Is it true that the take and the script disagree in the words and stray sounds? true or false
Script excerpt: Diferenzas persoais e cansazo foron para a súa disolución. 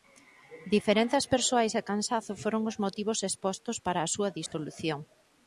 true